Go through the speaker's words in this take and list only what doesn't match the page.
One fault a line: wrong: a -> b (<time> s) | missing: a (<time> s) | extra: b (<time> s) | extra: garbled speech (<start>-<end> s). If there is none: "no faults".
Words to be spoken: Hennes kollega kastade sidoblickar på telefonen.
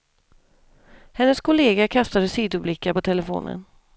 no faults